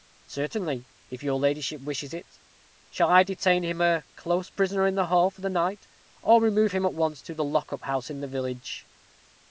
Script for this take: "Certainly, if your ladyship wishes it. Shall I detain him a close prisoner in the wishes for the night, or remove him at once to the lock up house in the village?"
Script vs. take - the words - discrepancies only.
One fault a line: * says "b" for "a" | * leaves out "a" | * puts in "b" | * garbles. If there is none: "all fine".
* says "hall" for "wishes"